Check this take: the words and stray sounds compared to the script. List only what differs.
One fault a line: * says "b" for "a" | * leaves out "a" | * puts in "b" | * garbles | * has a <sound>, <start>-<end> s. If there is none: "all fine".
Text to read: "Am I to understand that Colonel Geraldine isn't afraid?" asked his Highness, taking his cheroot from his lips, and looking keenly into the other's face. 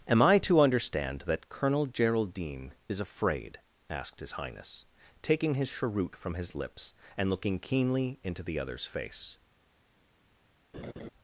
* says "is" for "isn't"
* has a laugh, 10.7-11.1 s